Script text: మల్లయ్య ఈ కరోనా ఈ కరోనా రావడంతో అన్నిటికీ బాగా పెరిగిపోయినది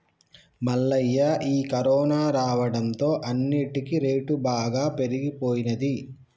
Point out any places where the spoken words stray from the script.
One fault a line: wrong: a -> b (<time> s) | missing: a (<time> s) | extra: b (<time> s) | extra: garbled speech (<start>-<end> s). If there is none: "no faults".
missing: ఈ కరోనా (2.2 s)
extra: రేటు (4.0 s)